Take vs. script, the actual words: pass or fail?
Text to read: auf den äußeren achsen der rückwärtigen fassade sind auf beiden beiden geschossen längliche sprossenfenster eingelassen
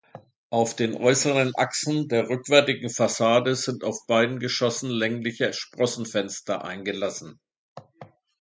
fail